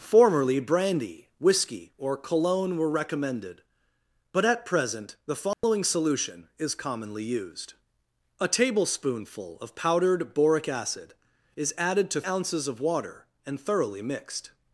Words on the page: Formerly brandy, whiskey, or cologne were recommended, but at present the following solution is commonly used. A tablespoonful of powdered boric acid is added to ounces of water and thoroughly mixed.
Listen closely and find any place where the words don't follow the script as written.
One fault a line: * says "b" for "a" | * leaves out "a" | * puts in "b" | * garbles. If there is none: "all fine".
all fine